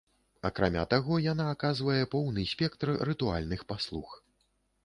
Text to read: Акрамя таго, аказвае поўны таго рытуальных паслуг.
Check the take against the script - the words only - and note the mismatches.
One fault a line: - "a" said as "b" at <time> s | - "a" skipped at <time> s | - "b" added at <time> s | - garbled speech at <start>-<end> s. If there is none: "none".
- "яна" added at 1.2 s
- "таго" said as "спектр" at 2.5 s